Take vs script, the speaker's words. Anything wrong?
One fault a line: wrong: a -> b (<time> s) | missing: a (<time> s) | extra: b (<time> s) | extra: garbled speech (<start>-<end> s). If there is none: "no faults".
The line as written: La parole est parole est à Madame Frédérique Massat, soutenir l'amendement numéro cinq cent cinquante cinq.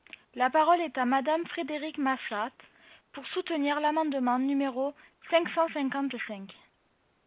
missing: parole est (1.0 s)
extra: pour (3.1 s)